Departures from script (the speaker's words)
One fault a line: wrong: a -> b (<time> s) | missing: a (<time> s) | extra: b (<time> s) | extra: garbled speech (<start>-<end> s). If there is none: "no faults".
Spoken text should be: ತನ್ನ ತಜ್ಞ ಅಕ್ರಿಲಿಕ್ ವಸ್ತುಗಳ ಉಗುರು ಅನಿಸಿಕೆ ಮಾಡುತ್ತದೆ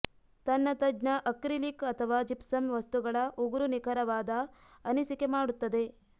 extra: ಅಥವಾ ಜಿಪ್ಸಮ್ (1.9 s)
extra: ನಿಖರವಾದ (3.7 s)